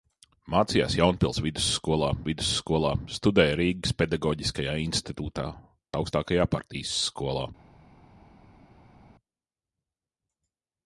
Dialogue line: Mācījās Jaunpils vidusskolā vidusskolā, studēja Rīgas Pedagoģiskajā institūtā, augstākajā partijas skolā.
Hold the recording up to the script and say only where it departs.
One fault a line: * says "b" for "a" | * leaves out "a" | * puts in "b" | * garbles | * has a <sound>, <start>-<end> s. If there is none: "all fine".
all fine